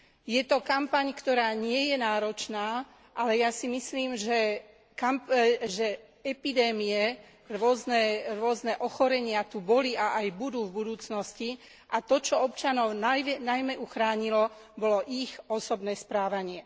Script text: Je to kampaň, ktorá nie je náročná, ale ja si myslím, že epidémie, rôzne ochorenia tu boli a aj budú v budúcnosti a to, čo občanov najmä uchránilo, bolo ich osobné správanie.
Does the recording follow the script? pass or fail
pass